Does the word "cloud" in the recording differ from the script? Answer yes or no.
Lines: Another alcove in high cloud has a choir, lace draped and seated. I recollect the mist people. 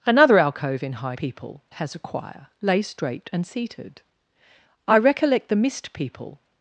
yes